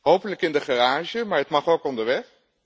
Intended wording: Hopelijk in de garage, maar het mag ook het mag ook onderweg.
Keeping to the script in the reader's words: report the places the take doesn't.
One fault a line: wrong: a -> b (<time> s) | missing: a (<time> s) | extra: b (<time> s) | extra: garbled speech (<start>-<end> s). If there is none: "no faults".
missing: het mag ook (1.8 s)